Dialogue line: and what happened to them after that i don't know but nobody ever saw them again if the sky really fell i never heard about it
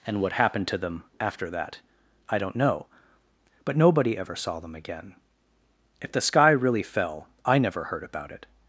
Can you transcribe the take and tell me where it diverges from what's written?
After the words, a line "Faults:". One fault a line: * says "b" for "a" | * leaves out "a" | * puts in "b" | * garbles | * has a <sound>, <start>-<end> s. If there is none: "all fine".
and what happened to them after that i don't know but nobody ever saw them again if the sky really fell i never heard about it
Faults:
all fine